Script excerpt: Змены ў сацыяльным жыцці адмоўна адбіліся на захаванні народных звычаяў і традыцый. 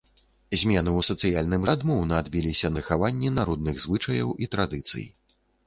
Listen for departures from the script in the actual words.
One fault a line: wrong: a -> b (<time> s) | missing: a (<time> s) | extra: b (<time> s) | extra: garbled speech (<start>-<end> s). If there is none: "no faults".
missing: жыцці (1.6 s)
missing: на (2.7 s)